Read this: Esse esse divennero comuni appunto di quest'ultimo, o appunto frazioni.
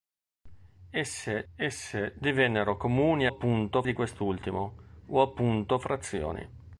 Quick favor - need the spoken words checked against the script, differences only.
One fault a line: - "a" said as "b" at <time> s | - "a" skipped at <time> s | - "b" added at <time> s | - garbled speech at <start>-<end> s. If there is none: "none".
none